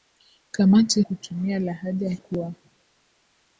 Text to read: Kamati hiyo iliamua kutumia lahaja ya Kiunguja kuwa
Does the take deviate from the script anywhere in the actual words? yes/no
yes